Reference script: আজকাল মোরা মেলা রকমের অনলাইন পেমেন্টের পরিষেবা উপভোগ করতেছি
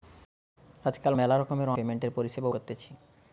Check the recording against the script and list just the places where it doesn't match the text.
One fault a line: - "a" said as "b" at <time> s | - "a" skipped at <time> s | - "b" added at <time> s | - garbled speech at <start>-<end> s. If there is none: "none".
- "মোরা" skipped at 1.1 s
- "অনলাইন" skipped at 1.7 s
- "উপভোগ" skipped at 2.5 s